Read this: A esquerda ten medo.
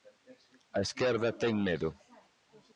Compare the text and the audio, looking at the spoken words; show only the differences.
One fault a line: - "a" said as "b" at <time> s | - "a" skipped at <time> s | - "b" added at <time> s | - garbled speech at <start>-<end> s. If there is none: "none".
none